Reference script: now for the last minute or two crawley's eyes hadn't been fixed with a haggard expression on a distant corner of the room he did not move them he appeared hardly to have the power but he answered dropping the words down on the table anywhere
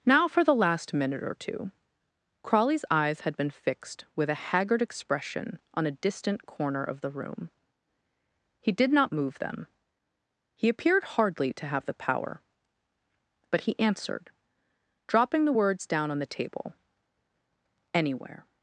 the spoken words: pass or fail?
fail